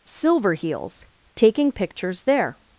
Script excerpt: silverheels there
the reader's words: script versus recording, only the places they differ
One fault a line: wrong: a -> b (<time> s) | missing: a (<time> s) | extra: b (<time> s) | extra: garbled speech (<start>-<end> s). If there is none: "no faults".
extra: taking pictures (1.4 s)